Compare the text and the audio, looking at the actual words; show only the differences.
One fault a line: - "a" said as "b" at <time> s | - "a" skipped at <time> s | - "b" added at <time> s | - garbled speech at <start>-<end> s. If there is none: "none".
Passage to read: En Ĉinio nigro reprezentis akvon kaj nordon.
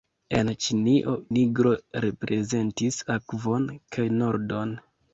none